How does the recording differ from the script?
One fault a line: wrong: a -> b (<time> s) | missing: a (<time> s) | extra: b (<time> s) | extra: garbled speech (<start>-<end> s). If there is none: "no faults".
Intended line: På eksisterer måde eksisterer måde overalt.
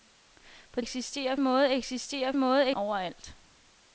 no faults